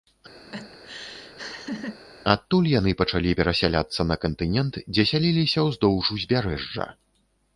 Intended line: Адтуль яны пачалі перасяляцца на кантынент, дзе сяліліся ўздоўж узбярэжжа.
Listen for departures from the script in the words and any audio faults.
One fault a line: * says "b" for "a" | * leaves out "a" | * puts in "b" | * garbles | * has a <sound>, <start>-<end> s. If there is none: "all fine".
* has a laugh, 0.5-2.0 s